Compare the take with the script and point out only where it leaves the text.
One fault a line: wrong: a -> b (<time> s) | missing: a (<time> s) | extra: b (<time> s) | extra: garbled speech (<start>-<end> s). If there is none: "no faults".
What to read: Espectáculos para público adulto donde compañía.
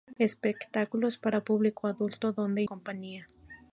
no faults